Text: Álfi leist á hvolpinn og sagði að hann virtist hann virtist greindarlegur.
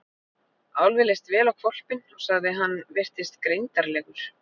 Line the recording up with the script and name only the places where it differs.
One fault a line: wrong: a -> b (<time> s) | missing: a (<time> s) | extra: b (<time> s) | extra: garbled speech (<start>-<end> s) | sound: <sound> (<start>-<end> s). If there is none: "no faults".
extra: vel (1.3 s)
missing: hann virtist (3.4 s)